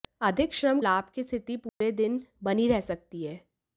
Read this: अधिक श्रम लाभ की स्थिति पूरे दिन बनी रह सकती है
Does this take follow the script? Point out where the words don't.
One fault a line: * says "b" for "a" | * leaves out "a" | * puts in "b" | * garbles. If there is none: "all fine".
all fine